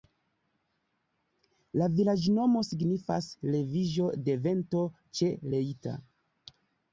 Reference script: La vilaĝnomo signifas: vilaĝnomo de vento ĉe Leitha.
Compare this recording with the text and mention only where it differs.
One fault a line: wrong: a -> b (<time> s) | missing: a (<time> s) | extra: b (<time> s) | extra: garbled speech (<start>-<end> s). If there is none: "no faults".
wrong: vilaĝnomo -> leviĝo (3.6 s)